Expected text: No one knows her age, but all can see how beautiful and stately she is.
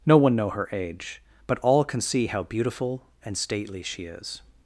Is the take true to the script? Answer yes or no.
no